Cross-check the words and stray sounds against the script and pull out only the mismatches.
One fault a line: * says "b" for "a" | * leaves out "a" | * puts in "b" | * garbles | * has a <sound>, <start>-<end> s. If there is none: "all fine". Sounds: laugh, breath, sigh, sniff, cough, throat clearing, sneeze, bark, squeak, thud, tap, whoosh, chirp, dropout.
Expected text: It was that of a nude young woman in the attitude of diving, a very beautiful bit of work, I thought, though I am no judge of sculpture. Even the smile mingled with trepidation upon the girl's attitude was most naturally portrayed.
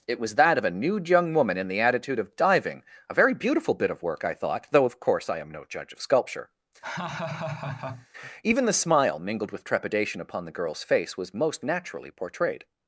* puts in "of course"
* has a laugh, 6.8-8.1 s
* says "face" for "attitude"